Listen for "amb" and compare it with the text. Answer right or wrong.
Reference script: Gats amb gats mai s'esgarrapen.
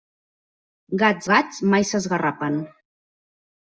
wrong